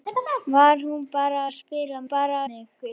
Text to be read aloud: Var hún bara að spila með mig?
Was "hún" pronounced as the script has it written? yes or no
yes